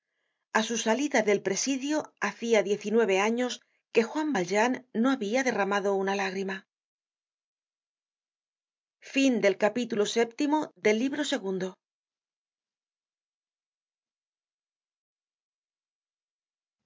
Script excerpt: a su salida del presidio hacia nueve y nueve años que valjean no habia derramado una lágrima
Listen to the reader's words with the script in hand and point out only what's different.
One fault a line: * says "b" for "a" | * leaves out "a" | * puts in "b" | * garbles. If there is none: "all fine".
* says "diez" for "nueve"
* puts in "juan"